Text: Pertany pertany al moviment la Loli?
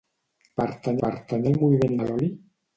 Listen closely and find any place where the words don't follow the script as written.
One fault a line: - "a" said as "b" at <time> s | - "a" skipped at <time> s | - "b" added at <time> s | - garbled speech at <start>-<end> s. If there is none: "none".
none